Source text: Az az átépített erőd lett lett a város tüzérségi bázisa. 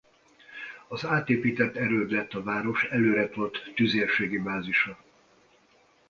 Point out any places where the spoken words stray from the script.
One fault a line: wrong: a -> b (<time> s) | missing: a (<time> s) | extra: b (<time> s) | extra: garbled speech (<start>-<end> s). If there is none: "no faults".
missing: az (1.1 s)
missing: lett (2.3 s)
extra: előretolt (2.8 s)